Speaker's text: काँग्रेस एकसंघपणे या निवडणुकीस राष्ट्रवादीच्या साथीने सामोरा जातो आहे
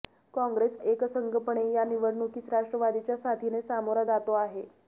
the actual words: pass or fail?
pass